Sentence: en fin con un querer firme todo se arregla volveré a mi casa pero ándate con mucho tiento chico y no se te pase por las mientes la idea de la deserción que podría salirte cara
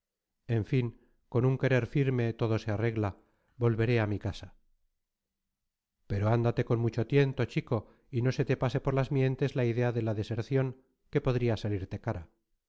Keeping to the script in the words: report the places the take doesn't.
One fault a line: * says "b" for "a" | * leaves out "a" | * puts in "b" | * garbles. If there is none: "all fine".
all fine